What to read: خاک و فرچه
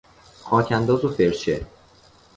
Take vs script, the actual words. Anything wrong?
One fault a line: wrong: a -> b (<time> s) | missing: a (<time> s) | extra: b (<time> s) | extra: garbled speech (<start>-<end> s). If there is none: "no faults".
extra: انداز (0.7 s)